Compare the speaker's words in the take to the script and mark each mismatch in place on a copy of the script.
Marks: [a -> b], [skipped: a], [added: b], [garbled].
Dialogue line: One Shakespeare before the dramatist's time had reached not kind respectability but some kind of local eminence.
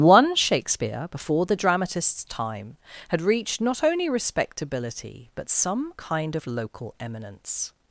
One Shakespeare before the dramatist's time had reached not [kind -> only] respectability but some kind of local eminence.